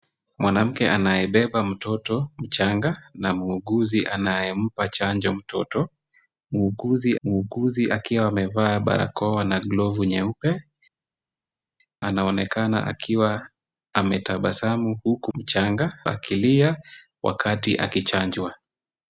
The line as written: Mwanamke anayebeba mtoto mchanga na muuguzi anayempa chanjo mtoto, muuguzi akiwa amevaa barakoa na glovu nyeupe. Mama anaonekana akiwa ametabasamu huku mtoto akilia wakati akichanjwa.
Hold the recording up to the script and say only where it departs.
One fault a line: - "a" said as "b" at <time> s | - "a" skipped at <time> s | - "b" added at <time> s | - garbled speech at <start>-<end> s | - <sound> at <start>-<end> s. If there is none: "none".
- "muuguzi" added at 7.2 s
- "Mama" skipped at 10.6 s
- "mtoto" said as "mchanga" at 15.3 s